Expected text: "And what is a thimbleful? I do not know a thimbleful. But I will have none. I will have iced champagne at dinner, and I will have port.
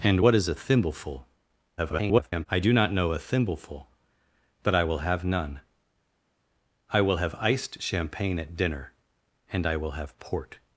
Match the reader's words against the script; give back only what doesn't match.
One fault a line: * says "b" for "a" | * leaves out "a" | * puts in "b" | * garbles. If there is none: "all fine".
* garbles